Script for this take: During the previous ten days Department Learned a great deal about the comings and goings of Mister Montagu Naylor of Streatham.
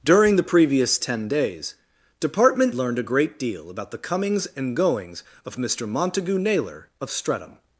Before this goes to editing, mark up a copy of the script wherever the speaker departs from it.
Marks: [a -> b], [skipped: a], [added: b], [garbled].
During the previous ten days Department Learned a great deal about the comings and goings of Mister Montagu Naylor of Streatham.